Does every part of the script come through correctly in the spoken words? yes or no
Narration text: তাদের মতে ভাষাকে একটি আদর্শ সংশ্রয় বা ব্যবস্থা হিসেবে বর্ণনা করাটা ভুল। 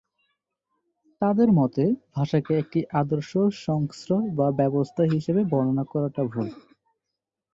yes